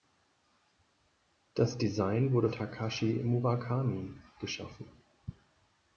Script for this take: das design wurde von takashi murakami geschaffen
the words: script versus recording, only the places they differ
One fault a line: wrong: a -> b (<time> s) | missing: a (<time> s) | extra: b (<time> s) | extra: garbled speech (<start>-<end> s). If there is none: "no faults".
missing: von (2.5 s)